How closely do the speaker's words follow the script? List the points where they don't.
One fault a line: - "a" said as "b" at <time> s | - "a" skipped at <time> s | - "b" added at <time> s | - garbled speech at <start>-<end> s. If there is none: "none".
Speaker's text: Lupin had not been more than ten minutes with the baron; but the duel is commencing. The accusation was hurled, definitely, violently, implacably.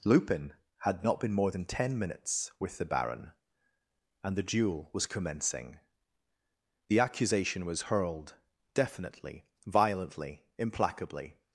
- "but" said as "and" at 4.2 s
- "is" said as "was" at 4.9 s